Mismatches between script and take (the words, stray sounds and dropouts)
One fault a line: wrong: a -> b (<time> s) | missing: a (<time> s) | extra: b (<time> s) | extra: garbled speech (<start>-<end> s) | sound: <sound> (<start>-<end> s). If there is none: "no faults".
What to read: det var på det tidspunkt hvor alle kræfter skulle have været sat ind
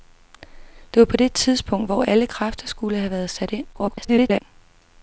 extra: garbled speech (3.7-4.4 s)